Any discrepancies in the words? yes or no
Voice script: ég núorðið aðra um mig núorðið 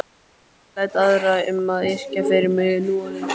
yes